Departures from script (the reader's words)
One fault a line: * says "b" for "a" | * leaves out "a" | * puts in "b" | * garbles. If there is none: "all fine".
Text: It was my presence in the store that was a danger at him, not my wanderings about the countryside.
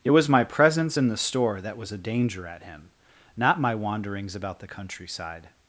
all fine